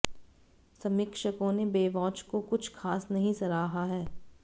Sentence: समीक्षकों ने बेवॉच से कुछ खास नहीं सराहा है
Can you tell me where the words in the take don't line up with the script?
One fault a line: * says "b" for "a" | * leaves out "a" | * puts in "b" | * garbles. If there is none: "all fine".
* says "को" for "से"